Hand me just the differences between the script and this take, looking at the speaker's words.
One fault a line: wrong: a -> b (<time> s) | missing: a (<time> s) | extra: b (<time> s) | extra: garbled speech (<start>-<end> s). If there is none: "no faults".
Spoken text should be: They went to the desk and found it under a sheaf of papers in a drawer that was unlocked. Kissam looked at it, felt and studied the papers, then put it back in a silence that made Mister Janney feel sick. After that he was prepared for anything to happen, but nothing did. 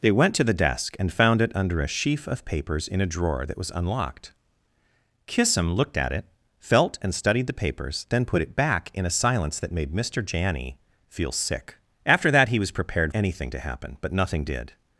missing: for (13.1 s)